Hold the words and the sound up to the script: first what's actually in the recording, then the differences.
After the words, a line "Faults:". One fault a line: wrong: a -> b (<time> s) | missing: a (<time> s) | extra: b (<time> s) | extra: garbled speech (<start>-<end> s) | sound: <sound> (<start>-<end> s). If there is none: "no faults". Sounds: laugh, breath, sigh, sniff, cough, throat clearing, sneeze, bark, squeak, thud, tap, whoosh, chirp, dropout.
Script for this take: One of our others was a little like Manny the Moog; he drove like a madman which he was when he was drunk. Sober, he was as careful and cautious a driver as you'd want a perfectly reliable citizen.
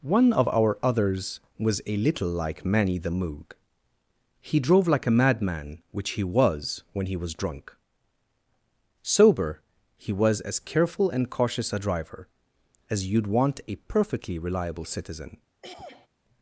One of our others was a little like Manny the Moog; he drove like a madman which he was when he was drunk. Sober, he was as careful and cautious a driver as you'd want a perfectly reliable citizen.
Faults:
sound: throat clearing (15.6-16.1 s)